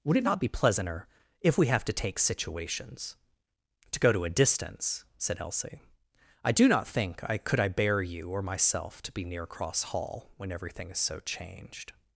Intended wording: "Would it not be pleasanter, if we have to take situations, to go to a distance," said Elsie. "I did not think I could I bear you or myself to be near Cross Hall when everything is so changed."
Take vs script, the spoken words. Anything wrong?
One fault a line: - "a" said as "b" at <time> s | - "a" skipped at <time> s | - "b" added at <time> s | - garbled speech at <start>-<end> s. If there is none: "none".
- "did" said as "do" at 6.5 s